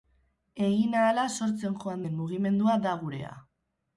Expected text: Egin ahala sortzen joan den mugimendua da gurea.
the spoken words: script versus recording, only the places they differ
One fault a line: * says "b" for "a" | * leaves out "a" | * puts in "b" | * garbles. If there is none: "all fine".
all fine